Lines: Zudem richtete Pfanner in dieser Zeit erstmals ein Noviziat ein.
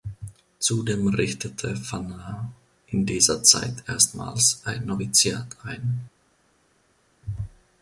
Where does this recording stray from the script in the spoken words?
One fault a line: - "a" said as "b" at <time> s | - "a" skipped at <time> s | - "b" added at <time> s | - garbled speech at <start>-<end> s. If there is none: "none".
none